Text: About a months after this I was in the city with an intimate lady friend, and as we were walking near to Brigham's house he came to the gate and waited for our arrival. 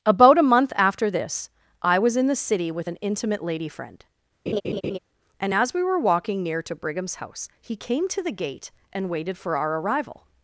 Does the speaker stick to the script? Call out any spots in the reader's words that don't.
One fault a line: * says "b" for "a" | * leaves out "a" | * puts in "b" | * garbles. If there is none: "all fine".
* says "month" for "months"